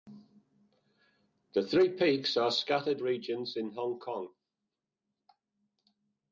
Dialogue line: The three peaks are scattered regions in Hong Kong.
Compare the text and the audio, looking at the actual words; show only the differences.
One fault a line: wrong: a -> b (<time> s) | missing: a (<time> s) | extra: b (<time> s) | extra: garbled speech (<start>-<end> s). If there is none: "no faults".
no faults